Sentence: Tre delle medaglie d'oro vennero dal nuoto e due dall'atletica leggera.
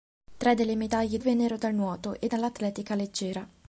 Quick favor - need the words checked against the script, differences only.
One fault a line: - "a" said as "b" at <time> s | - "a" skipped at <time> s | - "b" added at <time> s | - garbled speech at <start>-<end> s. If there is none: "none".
- "d'oro" skipped at 1.2 s
- "due" skipped at 2.3 s